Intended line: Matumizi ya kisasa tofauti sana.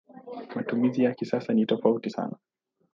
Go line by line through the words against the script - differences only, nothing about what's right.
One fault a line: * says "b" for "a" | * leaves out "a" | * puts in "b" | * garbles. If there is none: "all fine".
* puts in "ni"